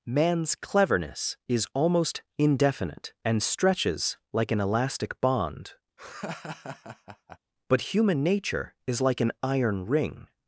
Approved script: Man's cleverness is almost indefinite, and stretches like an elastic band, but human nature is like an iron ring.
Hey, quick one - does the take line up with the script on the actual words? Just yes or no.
no